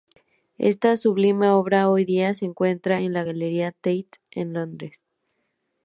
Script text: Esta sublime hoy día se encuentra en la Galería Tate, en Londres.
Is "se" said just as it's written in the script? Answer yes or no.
yes